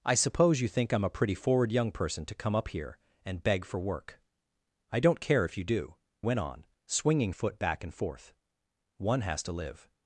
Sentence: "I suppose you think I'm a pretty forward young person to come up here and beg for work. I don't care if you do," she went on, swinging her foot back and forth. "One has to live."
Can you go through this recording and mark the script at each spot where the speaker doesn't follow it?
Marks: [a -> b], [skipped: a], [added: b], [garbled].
"I suppose you think I'm a pretty forward young person to come up here and beg for work. I don't care if you do," [skipped: she] went on, swinging [skipped: her] foot back and forth. "One has to live."